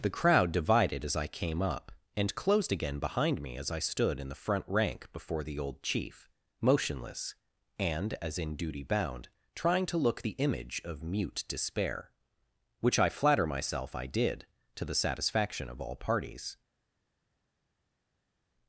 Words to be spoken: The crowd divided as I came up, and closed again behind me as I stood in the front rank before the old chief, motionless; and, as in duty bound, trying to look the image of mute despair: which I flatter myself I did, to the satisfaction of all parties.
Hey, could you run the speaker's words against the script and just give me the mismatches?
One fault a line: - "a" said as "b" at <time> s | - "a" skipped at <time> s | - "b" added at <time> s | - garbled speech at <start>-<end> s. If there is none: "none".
none